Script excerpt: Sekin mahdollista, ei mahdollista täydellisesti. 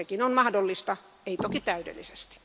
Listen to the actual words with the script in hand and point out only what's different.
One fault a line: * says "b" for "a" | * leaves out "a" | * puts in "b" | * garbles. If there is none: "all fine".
* puts in "on"
* says "toki" for "mahdollista"